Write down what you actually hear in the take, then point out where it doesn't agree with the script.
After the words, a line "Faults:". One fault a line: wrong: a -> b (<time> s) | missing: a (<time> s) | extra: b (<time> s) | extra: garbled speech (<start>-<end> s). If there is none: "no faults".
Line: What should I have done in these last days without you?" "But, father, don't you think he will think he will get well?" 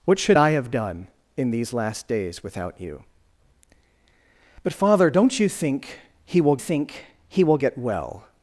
What should I have done in these last days without you?" "But, father, don't you think he will think he will get well?"
Faults:
no faults